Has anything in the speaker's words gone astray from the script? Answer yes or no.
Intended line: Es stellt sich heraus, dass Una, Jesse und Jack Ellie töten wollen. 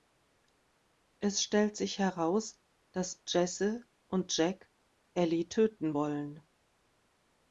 yes